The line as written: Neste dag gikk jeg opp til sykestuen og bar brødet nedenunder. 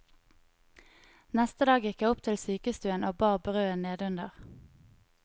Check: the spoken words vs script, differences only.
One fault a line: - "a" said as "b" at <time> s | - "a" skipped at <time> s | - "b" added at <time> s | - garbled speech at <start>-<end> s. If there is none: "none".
none